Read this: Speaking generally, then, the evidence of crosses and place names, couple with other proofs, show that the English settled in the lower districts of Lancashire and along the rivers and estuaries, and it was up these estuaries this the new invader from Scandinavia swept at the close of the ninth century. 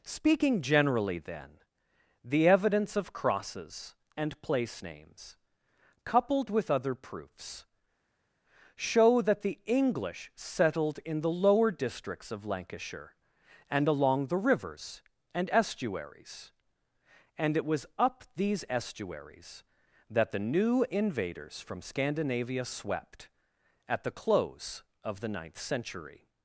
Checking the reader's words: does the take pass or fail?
fail